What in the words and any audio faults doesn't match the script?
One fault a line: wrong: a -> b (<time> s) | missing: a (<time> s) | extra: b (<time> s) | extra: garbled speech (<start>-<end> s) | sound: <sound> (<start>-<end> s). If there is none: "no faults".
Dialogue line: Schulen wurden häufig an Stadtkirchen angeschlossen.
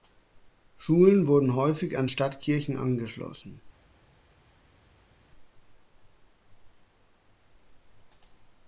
no faults